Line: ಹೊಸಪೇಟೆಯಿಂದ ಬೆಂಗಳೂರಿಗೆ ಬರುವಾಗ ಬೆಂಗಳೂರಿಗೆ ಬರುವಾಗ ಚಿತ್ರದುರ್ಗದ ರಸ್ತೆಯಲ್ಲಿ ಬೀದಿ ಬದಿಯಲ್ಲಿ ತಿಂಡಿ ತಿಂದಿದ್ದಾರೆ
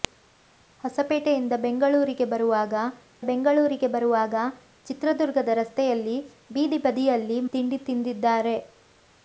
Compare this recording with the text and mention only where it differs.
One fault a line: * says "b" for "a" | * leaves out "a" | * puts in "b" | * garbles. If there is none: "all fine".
all fine